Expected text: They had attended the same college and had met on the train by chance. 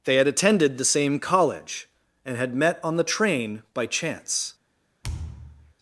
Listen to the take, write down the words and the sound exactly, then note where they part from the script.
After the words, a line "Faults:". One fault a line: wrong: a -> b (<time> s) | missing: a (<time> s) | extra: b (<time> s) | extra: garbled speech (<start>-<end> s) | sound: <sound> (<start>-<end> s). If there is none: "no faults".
They had attended the same college and had met on the train by chance.
Faults:
sound: thud (5.0-5.7 s)